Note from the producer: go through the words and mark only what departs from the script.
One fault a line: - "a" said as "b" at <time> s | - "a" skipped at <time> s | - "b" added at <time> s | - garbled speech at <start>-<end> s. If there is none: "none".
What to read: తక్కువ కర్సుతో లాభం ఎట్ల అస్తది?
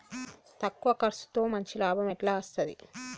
- "మంచి" added at 1.5 s